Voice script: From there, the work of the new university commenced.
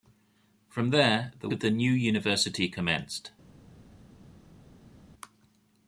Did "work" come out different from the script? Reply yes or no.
yes